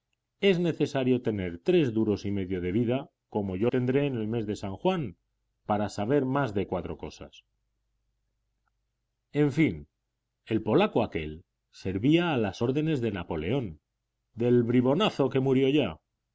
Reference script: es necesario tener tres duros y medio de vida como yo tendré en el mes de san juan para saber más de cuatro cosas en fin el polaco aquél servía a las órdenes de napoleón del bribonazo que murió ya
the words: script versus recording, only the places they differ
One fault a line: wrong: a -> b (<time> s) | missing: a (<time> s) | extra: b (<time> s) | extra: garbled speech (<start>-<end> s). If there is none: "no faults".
no faults